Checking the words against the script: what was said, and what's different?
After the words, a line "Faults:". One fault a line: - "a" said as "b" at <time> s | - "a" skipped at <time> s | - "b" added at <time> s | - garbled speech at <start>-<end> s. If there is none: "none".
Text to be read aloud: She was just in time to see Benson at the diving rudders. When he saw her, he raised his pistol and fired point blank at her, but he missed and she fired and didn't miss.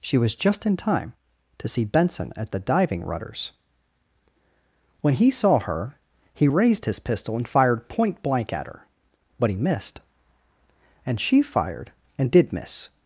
She was just in time to see Benson at the diving rudders. When he saw her, he raised his pistol and fired point blank at her, but he missed and she fired and did miss.
Faults:
- "didn't" said as "did" at 12.3 s